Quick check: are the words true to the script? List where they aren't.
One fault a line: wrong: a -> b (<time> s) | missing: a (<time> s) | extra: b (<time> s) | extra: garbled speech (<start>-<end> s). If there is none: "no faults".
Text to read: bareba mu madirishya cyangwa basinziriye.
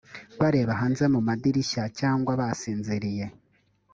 extra: hanze (0.8 s)